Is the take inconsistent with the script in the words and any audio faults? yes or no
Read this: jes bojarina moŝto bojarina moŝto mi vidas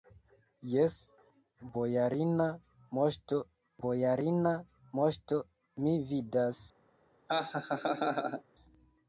yes